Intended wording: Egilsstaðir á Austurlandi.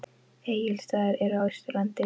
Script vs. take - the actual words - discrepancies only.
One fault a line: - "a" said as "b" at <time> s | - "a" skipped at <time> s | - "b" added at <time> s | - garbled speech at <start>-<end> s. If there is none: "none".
- "eru" added at 1.3 s